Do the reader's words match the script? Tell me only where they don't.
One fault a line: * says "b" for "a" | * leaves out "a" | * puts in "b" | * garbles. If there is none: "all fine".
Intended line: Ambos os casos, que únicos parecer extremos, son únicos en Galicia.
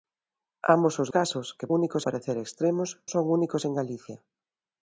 all fine